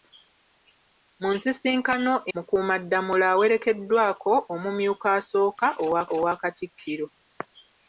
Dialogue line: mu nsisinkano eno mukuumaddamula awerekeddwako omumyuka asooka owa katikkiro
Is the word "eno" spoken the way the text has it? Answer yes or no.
no